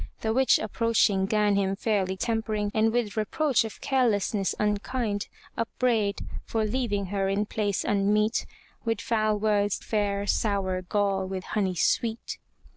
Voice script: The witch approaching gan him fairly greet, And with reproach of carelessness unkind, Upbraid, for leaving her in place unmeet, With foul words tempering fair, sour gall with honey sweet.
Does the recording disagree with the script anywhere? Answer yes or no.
yes